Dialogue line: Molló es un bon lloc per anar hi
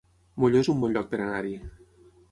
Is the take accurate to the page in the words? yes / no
yes